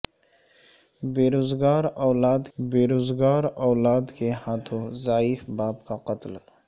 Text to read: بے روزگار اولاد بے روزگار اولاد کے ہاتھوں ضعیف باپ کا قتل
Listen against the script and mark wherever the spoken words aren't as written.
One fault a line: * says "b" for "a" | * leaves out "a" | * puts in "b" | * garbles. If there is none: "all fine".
all fine